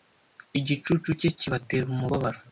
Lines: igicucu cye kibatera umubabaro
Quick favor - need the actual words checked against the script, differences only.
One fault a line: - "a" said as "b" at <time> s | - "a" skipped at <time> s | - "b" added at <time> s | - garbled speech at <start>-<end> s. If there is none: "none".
none